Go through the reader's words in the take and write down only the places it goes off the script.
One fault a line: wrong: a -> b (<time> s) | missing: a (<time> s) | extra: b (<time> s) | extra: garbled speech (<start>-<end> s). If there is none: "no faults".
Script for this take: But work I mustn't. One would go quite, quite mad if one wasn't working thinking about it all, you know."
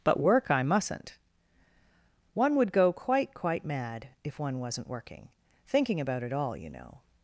no faults